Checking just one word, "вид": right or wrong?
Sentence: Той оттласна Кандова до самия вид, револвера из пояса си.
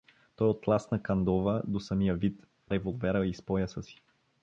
right